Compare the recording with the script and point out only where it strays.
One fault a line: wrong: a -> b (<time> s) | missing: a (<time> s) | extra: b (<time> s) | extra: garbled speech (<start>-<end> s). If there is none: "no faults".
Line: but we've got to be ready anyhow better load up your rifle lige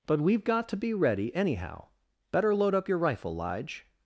no faults